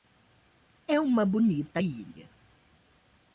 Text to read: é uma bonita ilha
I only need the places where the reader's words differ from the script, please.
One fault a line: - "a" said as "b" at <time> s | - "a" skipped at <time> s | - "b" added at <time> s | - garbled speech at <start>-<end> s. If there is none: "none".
none